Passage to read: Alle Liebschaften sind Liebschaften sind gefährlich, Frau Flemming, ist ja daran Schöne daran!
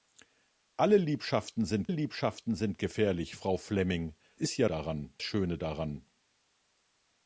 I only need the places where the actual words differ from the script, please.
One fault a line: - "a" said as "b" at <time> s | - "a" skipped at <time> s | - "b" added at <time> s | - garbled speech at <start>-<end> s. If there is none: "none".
none